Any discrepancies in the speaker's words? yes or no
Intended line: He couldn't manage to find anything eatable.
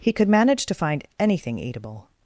yes